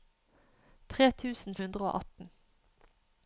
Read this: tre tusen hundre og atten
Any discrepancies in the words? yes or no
no